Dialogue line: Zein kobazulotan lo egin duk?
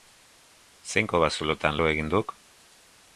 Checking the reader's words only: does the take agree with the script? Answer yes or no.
yes